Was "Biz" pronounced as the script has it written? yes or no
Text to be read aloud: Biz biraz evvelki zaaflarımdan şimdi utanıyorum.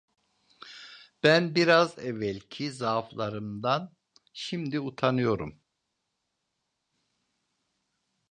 no